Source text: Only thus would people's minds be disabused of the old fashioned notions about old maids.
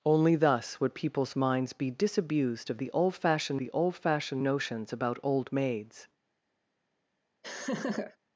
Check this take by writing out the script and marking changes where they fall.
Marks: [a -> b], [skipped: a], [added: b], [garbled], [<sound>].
Only thus would people's minds be disabused of the old fashioned [added: the old fashioned] notions about old maids. [laugh]